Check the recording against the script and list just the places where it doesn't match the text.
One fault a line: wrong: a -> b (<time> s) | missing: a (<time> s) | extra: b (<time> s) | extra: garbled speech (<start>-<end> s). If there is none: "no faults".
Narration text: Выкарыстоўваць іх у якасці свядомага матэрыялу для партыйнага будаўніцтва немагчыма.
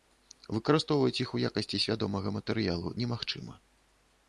missing: для партыйнага будаўніцтва (3.0 s)